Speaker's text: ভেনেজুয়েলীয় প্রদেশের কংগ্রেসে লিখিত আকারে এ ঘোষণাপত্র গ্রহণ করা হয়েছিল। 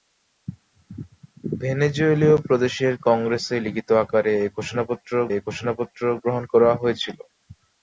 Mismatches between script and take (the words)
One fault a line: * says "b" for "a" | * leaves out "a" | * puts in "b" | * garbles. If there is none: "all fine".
* puts in "এ ঘোষণাপত্র"